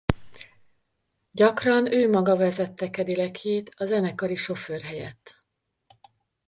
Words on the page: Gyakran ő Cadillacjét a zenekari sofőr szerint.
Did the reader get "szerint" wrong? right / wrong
wrong